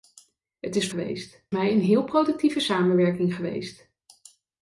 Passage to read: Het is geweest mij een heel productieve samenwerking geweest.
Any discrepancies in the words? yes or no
no